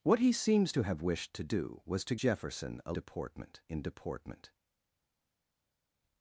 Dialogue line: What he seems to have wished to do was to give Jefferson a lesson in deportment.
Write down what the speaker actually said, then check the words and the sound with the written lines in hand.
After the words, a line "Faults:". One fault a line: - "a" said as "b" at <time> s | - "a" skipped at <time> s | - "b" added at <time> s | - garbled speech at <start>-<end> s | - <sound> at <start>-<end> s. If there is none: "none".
What he seems to have wished to do was to Jefferson a deportment in deportment.
Faults:
- "give" skipped at 2.1 s
- "lesson" said as "deportment" at 2.9 s